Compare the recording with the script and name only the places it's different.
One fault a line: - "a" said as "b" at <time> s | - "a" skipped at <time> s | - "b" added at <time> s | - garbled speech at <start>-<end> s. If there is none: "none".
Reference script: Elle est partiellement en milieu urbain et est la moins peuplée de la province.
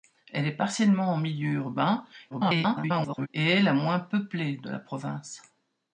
- garbled speech at 2.3-3.3 s